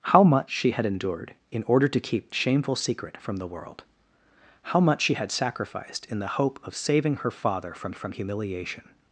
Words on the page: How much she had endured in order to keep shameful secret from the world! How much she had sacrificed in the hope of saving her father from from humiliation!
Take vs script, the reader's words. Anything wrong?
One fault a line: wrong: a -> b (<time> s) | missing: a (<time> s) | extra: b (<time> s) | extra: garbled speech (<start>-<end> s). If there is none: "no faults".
no faults